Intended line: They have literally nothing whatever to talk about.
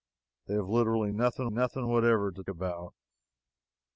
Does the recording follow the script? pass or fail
fail